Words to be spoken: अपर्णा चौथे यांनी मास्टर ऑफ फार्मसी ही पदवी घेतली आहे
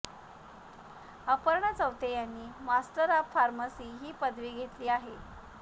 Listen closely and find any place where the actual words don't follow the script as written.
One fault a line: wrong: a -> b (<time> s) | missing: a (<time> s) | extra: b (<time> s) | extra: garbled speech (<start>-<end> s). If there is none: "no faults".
no faults